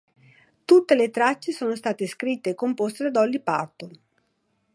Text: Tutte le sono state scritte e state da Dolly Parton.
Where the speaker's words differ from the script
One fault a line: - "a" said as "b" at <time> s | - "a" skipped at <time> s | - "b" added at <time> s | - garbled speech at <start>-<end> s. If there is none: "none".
- "tracce" added at 1.1 s
- "state" said as "composte" at 2.5 s